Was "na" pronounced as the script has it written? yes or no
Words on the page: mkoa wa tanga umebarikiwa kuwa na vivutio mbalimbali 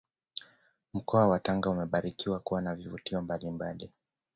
yes